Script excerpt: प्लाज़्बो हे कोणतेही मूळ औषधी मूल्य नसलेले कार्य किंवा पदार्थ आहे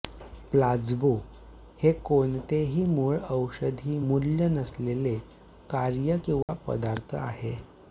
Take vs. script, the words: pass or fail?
pass